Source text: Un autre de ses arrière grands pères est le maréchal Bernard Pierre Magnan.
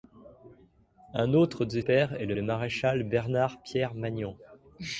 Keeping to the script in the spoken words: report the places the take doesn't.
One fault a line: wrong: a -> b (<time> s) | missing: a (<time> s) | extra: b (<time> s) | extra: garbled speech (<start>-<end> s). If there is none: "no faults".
missing: ses arrière grands (1.8 s)
extra: le (2.3 s)